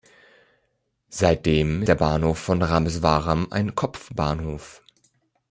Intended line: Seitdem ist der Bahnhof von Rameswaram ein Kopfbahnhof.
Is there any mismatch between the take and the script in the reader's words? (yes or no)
yes